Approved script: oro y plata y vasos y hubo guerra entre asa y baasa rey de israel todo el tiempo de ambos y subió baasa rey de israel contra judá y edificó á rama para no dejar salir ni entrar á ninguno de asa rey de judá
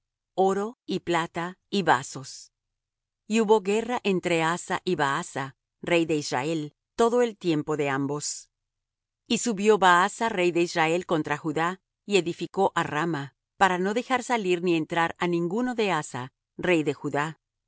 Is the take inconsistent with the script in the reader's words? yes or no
no